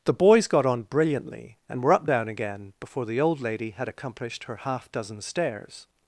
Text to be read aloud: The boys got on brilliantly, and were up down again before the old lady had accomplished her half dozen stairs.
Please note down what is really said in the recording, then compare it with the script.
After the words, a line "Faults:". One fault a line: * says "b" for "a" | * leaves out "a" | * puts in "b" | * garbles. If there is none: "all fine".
The boys got on brilliantly, and were up down again before the old lady had accomplished her half dozen stairs.
Faults:
all fine